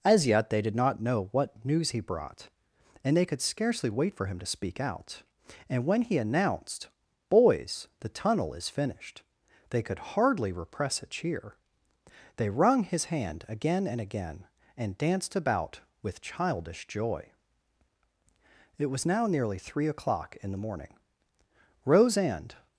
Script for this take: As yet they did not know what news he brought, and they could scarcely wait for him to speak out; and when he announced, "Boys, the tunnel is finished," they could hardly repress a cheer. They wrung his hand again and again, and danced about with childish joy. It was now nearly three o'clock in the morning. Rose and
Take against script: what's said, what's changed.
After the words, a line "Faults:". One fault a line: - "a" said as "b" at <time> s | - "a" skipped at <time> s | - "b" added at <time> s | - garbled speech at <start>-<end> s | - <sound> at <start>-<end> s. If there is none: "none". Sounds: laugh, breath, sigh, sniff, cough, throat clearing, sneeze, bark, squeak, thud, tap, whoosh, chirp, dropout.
As yet they did not know what news he brought, and they could scarcely wait for him to speak out; and when he announced, "Boys, the tunnel is finished," they could hardly repress a cheer. They wrung his hand again and again, and danced about with childish joy. It was now nearly three o'clock in the morning. Rose and
Faults:
none